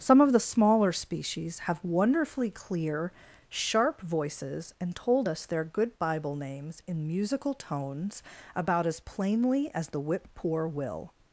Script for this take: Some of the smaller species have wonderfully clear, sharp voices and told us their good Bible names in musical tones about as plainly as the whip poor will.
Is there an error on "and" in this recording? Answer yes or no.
no